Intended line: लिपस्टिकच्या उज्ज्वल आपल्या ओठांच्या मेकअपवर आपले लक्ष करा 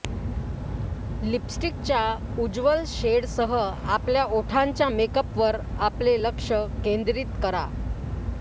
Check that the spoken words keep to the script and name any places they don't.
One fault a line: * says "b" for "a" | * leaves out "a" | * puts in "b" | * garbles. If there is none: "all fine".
* puts in "शेडसह"
* puts in "केंद्रित"